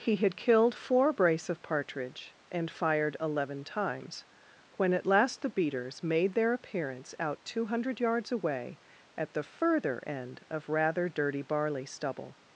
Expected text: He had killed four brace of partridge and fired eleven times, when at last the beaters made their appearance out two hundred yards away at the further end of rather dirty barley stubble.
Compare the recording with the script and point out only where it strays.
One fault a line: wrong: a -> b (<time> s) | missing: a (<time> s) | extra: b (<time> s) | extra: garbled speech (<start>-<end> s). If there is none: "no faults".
no faults